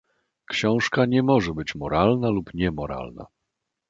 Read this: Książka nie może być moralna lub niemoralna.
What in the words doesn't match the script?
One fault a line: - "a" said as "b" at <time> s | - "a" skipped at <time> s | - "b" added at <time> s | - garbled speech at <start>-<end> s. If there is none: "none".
none